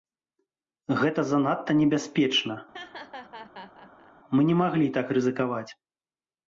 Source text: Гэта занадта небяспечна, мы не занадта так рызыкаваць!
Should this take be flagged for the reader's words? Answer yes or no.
yes